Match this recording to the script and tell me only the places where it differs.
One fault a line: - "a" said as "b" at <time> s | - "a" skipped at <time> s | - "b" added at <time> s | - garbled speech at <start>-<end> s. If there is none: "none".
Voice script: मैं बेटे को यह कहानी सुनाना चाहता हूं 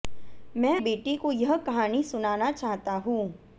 none